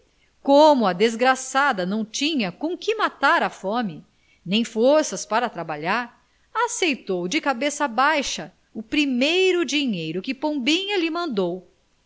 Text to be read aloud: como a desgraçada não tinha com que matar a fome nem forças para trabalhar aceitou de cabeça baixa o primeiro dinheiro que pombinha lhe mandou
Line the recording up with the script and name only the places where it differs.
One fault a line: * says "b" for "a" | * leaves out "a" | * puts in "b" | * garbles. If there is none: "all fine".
all fine